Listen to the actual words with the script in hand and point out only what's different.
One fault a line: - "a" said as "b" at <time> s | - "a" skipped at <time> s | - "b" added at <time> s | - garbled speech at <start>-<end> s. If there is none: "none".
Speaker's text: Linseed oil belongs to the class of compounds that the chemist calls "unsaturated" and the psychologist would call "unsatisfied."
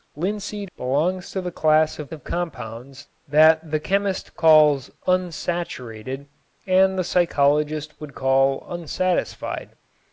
- "oil" skipped at 0.7 s
- "of" added at 2.1 s